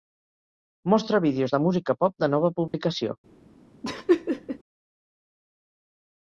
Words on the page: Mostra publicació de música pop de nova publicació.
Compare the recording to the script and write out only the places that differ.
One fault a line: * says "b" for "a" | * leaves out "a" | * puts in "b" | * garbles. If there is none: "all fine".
* says "vídeos" for "publicació"